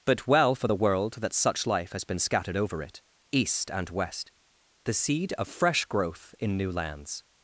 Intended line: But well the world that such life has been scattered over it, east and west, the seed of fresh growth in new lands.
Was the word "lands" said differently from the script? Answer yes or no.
no